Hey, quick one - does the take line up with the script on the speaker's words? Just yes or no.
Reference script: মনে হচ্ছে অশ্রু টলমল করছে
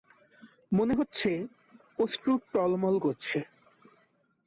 yes